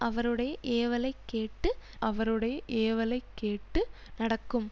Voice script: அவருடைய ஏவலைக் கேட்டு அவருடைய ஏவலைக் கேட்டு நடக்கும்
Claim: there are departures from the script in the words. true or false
false